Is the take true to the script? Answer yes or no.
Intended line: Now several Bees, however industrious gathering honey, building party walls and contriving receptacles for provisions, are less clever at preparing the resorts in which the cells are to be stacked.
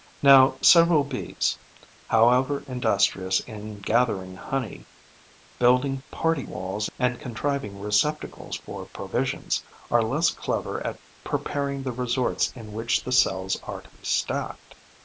no